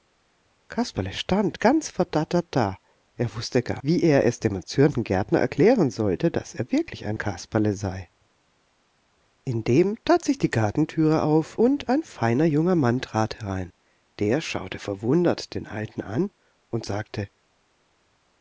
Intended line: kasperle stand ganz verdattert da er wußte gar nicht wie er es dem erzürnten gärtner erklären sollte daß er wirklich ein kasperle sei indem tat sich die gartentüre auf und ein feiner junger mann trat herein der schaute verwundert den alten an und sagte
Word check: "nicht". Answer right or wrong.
wrong